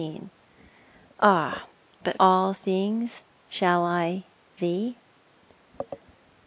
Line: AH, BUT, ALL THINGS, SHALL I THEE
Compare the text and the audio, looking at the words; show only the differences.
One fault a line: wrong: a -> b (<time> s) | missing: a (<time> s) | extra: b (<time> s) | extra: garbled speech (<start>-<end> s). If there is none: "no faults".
no faults